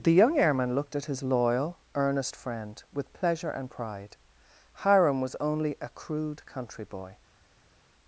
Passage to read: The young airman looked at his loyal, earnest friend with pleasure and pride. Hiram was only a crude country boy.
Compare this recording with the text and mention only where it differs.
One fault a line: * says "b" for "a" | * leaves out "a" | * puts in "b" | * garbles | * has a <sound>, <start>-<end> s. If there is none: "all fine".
all fine